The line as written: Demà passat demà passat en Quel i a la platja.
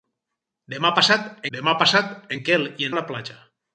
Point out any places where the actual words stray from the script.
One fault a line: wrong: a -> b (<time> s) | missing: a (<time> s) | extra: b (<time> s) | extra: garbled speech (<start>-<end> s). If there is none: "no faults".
no faults